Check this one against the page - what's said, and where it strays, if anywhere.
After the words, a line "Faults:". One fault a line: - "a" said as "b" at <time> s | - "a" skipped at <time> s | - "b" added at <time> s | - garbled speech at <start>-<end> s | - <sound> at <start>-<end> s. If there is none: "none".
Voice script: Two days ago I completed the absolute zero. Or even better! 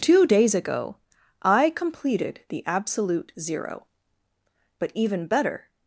Two days ago I completed the absolute zero. But even better!
Faults:
- "Or" said as "But" at 4.8 s